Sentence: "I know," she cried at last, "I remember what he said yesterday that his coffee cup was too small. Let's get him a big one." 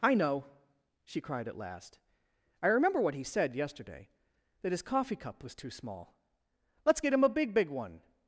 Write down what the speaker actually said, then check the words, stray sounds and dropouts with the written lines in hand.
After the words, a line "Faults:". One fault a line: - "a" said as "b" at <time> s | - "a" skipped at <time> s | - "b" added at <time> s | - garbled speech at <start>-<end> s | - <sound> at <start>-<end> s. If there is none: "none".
"I know," she cried at last, "I remember what he said yesterday that his coffee cup was too small. Let's get him a big big one."
Faults:
- "big" added at 7.5 s